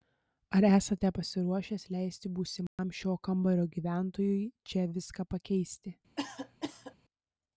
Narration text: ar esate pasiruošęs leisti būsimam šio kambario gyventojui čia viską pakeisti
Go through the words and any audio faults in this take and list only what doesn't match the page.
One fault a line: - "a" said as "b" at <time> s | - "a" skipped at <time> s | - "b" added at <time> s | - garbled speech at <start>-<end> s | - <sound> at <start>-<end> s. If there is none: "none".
- dropout at 2.7-2.8 s
- cough at 6.2-7.0 s